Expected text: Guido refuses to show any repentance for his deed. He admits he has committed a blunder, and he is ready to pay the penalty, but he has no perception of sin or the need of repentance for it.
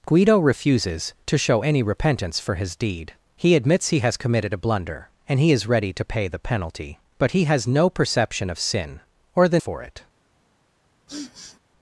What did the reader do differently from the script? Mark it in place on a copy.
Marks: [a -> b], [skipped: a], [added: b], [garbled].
Guido refuses to show any repentance for his deed. He admits he has committed a blunder, and he is ready to pay the penalty, but he has no perception of sin or the [skipped: need of repentance] for it.